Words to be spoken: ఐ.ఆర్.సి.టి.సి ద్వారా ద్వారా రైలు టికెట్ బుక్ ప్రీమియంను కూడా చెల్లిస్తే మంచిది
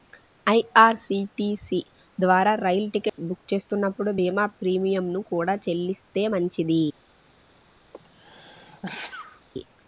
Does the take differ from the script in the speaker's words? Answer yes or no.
yes